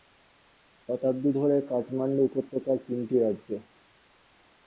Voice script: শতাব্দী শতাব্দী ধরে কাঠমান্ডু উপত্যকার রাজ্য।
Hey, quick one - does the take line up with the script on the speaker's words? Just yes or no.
no